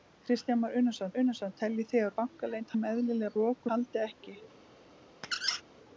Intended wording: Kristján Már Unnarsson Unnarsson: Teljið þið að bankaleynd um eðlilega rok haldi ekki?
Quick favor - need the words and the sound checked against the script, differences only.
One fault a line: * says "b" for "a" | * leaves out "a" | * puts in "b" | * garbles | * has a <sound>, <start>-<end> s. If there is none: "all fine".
* has a squeak, 5.2-5.6 s